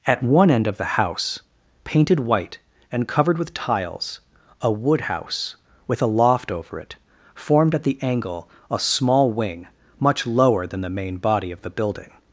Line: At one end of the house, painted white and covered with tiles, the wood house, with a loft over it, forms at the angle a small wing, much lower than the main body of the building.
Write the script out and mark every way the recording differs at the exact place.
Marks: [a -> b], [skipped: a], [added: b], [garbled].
At one end of the house, painted white and covered with tiles, [the -> a] wood house, with a loft over it, [forms -> formed] at the angle a small wing, much lower than the main body of the building.